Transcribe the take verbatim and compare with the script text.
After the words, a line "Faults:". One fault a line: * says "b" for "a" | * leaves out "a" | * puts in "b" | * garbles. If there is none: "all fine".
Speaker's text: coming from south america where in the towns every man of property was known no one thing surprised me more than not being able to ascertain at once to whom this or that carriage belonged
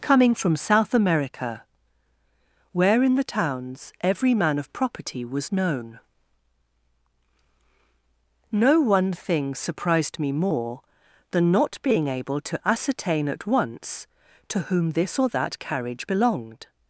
coming from south america where in the towns every man of property was known no one thing surprised me more than not being able to ascertain at once to whom this or that carriage belonged
Faults:
all fine